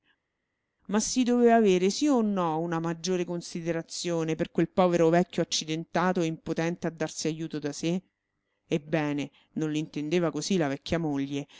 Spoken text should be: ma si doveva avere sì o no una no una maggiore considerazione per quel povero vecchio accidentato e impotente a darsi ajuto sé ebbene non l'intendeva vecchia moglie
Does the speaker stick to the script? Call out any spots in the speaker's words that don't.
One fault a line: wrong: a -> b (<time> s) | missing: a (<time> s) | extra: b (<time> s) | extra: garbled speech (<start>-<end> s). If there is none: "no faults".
missing: no una (2.8 s)
extra: da (7.6 s)
extra: così la (10.3 s)